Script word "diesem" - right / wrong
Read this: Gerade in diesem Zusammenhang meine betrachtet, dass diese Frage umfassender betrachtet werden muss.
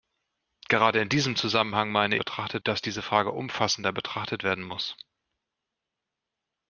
right